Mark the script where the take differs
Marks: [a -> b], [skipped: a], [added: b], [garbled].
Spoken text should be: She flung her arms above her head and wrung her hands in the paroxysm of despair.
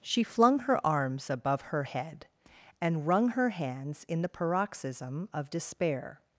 She flung her arms above her head and wrung her hands in the paroxysm of despair.